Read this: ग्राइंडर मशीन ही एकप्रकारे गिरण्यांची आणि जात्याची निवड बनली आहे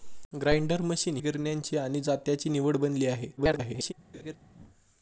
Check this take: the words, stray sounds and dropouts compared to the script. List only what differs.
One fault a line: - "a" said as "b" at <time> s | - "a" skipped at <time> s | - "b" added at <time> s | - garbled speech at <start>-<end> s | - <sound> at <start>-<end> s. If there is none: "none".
- "ही एकप्रकारे" skipped at 1.2 s
- garbled speech at 3.4-3.9 s
- laugh at 4.1-4.4 s